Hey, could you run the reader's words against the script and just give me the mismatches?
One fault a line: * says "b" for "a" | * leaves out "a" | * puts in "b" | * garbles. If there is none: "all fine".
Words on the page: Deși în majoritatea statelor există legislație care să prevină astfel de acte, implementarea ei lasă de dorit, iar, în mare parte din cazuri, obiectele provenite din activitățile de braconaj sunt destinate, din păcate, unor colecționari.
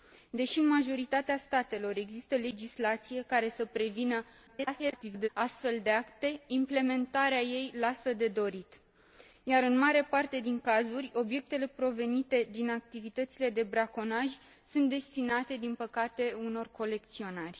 * garbles